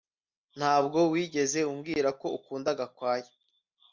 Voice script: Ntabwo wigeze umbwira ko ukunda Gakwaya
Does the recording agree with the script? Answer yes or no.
yes